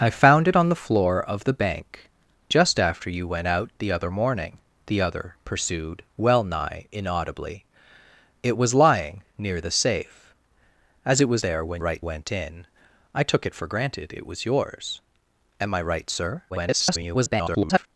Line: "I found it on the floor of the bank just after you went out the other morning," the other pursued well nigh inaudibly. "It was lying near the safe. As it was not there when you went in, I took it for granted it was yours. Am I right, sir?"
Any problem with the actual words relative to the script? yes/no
yes